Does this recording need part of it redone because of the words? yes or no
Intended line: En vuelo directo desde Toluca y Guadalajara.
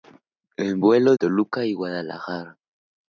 yes